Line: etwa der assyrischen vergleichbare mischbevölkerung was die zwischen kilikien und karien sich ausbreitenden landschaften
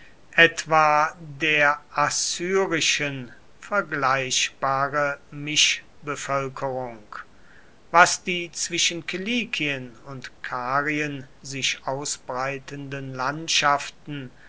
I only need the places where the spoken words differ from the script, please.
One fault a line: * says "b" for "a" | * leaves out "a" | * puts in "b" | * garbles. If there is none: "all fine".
all fine